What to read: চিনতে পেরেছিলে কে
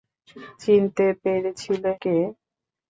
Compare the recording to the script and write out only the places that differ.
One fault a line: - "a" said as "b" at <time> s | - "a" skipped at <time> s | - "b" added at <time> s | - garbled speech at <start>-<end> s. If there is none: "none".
none